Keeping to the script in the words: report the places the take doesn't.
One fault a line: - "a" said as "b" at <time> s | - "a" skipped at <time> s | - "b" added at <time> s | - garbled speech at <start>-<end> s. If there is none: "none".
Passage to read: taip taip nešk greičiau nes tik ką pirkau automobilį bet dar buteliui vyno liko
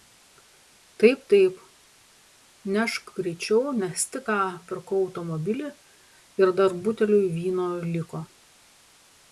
- "bet" said as "ir" at 6.4 s